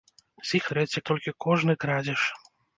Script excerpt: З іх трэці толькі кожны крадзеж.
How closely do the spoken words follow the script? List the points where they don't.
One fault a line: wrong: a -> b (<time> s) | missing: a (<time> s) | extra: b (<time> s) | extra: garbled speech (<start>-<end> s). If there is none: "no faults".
no faults